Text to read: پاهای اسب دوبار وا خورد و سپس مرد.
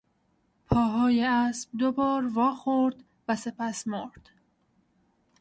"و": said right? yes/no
yes